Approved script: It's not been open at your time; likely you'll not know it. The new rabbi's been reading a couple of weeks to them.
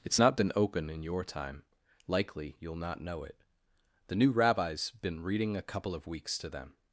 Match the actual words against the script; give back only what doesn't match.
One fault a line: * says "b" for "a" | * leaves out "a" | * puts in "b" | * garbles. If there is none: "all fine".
* says "in" for "at"